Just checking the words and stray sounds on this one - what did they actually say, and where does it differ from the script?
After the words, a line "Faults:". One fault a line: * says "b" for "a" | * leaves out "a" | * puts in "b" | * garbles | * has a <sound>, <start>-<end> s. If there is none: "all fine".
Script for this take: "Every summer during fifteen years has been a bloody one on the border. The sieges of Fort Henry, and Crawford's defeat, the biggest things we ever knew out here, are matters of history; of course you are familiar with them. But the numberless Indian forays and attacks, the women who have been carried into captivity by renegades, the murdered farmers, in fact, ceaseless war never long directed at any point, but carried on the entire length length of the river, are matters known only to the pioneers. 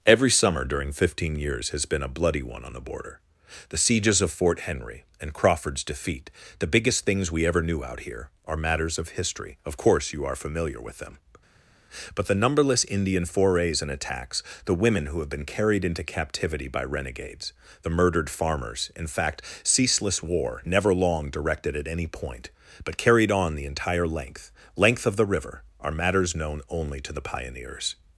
"Every summer during fifteen years has been a bloody one on the border. The sieges of Fort Henry, and Crawford's defeat, the biggest things we ever knew out here, are matters of history; of course you are familiar with them. But the numberless Indian forays and attacks, the women who have been carried into captivity by renegades, the murdered farmers, in fact, ceaseless war never long directed at any point, but carried on the entire length length of the river, are matters known only to the pioneers.
Faults:
all fine